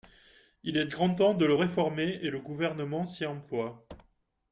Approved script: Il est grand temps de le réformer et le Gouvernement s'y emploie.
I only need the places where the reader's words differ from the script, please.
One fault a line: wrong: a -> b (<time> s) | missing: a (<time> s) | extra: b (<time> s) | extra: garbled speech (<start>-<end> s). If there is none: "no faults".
no faults